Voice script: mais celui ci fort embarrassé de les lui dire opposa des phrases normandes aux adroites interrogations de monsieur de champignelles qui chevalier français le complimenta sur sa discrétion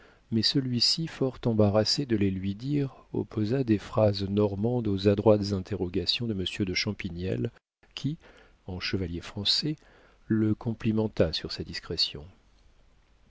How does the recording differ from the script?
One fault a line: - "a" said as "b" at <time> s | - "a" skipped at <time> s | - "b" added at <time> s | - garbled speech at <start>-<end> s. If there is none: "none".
- "en" added at 8.7 s